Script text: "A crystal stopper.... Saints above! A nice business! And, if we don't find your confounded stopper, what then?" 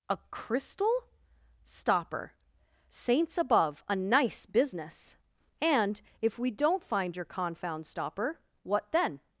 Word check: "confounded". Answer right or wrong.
wrong